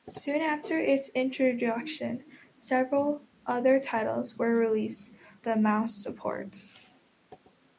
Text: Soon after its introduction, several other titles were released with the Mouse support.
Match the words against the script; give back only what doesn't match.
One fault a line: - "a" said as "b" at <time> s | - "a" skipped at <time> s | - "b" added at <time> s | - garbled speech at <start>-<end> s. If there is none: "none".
- "with" skipped at 5.1 s